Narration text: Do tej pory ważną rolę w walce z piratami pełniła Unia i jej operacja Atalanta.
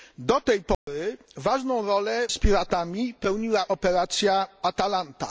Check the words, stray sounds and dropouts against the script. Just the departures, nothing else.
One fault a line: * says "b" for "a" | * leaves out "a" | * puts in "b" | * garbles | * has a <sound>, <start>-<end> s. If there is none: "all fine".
* has a dropout, 0.7-0.9 s
* leaves out "w walce"
* leaves out "Unia i jej"